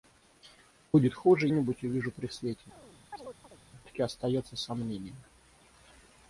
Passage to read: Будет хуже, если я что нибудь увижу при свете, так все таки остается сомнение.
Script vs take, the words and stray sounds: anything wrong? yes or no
yes